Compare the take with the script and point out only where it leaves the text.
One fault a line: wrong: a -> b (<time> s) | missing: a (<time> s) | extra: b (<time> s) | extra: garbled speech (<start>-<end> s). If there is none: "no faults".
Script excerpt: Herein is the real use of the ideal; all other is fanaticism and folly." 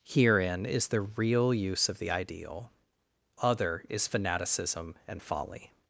missing: all (2.7 s)